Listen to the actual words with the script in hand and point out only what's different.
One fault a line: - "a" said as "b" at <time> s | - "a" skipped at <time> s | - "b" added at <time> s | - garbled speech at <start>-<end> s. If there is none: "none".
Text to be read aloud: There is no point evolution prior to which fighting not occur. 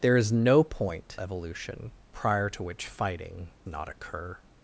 none